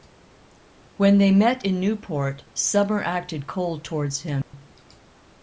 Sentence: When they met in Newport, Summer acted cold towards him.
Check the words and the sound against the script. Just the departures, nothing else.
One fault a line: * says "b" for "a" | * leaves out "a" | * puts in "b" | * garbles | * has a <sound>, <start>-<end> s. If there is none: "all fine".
* has a dropout, 4.4-4.5 s